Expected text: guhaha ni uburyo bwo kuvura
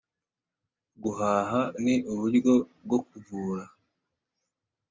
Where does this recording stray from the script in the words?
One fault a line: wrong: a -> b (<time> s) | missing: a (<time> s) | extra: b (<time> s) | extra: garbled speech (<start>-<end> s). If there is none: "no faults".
no faults